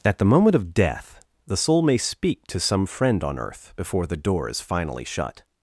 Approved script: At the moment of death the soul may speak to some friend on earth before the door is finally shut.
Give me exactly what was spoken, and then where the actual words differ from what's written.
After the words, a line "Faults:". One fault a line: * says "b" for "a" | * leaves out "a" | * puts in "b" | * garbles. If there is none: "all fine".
At the moment of death the soul may speak to some friend on earth before the door is finally shut.
Faults:
all fine